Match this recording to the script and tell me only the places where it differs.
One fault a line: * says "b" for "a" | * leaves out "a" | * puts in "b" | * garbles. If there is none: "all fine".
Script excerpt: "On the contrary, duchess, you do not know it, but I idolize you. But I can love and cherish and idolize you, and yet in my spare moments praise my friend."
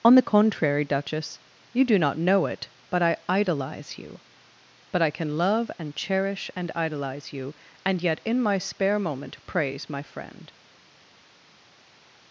* says "moment" for "moments"